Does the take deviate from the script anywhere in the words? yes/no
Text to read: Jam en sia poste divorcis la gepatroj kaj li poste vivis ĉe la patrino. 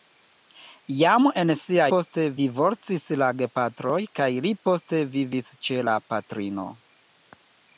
no